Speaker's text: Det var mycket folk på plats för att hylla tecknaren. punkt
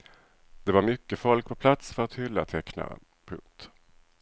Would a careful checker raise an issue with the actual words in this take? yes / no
no